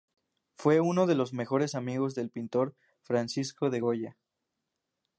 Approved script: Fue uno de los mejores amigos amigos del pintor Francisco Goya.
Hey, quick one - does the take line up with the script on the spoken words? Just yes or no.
no